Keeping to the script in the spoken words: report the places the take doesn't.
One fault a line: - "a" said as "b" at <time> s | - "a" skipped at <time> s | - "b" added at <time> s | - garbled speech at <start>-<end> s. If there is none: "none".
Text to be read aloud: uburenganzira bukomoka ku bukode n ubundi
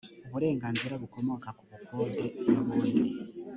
none